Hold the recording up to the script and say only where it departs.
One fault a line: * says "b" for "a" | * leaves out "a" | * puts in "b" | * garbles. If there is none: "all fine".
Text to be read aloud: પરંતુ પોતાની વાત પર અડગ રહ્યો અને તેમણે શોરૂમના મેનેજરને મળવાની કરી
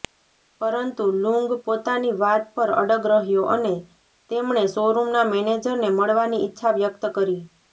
* puts in "લુંગ"
* puts in "ઈચ્છા વ્યક્ત"